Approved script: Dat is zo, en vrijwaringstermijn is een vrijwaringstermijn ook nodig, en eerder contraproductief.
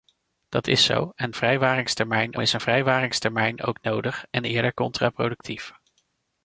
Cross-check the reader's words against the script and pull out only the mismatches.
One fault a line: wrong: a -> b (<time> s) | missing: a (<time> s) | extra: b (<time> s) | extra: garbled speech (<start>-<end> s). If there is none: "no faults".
no faults